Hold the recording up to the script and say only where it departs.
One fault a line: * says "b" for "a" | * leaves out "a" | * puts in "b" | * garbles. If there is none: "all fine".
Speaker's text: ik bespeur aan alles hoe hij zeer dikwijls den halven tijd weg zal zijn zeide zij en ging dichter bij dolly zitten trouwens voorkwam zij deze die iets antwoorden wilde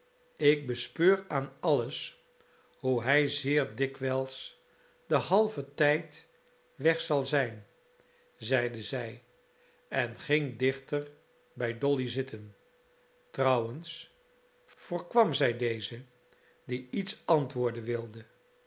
all fine